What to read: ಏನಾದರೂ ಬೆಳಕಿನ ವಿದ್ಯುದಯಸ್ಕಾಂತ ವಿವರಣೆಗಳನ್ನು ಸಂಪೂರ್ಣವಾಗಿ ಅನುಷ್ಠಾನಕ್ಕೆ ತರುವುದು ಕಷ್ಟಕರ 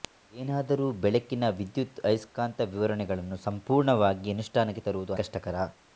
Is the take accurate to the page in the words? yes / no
yes